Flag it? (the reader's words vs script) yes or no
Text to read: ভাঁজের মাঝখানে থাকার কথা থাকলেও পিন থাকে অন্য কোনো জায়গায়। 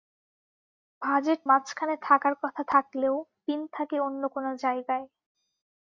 no